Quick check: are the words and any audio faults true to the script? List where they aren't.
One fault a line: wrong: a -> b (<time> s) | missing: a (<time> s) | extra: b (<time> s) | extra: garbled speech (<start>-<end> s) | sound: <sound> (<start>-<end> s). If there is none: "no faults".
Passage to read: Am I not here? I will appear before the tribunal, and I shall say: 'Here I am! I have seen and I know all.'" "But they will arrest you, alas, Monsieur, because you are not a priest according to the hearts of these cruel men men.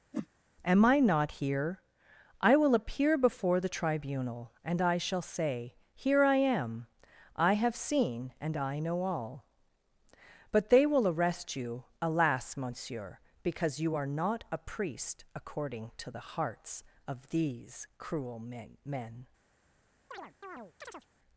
sound: whoosh (0.1-0.3 s)
sound: chirp (20.1-21.1 s)